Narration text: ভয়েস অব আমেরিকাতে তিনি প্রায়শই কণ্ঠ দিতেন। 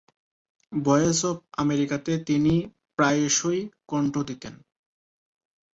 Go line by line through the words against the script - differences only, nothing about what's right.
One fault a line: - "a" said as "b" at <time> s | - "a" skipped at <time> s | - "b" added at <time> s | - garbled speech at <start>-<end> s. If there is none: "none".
none